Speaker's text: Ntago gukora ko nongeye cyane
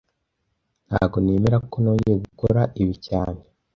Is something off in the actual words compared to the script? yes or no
yes